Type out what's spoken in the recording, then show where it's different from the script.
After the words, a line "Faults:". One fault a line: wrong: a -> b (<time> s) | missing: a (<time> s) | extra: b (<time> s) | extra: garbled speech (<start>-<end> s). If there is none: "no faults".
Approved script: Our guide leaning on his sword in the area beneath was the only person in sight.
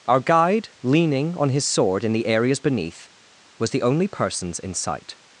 Our guide leaning on his sword in the areas beneath was the only persons in sight.
Faults:
wrong: area -> areas (2.2 s)
wrong: person -> persons (4.1 s)